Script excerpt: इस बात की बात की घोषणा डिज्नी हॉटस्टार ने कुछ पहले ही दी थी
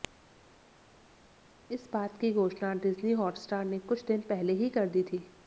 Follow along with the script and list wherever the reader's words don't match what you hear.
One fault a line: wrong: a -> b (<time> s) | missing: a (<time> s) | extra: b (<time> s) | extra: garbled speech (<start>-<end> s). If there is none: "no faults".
missing: बात की (2.3 s)
extra: दिन (4.0 s)
extra: कर (4.7 s)